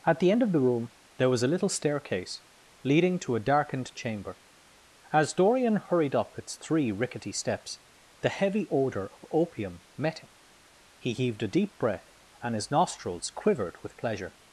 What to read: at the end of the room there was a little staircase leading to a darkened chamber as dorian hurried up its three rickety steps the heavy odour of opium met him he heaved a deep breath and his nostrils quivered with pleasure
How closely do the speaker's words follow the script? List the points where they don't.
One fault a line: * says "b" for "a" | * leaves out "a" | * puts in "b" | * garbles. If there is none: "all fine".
all fine